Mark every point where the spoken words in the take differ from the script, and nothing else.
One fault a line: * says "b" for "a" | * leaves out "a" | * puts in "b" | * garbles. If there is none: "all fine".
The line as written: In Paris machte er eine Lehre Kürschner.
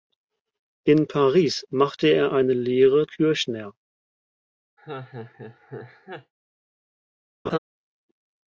all fine